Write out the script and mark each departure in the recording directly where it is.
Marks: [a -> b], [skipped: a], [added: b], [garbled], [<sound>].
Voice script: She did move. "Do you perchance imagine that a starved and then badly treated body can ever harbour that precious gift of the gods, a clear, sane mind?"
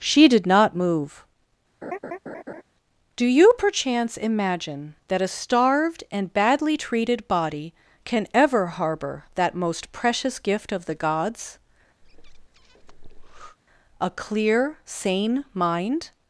She did [added: not] move. [laugh] "Do you perchance imagine that a starved and [skipped: then] badly treated body can ever harbour that [added: most] precious gift of the gods, [breath] a clear, sane mind?"